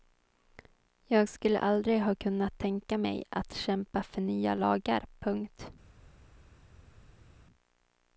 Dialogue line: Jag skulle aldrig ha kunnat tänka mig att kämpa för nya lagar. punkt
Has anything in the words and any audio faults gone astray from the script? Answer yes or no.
no